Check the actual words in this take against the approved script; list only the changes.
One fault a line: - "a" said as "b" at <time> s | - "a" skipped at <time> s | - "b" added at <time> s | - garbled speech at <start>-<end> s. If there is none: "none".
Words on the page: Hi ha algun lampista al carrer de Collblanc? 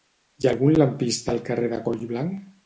none